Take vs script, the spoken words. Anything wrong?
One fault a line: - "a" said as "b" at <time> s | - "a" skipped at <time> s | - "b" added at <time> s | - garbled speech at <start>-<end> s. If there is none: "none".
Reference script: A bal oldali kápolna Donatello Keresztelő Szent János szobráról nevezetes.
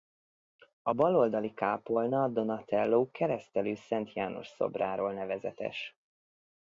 none